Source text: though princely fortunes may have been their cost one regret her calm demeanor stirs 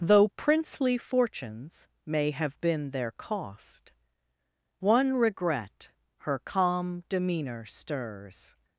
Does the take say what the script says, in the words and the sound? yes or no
yes